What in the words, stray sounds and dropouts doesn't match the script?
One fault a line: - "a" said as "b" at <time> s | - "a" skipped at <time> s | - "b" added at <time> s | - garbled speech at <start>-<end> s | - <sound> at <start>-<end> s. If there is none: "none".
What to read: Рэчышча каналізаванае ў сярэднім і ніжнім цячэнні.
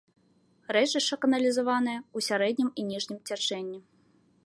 none